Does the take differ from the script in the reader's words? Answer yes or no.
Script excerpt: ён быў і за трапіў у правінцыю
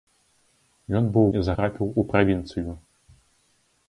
no